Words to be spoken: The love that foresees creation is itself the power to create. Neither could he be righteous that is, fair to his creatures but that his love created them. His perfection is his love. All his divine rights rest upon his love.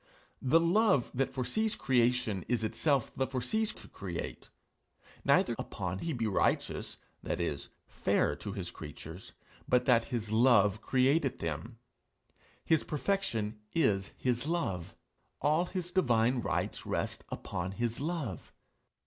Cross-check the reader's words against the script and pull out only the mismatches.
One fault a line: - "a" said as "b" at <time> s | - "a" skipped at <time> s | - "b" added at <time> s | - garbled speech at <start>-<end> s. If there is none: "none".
- "power" said as "foresees" at 3.3 s
- "could" said as "upon" at 5.6 s